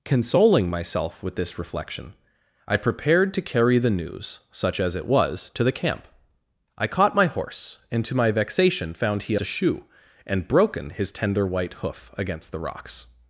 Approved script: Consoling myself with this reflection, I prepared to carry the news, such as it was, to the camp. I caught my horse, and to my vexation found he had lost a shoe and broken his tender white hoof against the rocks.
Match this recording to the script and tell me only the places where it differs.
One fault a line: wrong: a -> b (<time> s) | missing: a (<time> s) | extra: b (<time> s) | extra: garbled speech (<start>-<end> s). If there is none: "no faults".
missing: had lost (9.3 s)